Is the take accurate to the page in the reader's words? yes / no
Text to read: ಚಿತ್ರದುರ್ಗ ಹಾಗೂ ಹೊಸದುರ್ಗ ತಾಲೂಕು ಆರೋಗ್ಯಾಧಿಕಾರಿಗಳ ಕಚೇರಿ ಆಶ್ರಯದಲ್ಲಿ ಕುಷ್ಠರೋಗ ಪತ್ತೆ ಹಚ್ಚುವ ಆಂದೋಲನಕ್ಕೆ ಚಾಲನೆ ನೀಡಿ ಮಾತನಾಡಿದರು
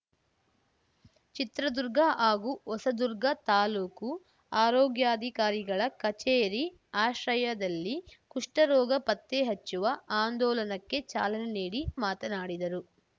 yes